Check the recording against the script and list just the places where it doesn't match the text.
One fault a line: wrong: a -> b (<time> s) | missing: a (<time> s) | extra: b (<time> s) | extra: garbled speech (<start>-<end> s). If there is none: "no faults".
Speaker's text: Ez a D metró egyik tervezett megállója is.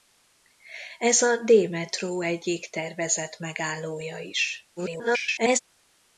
extra: garbled speech (4.8-5.6 s)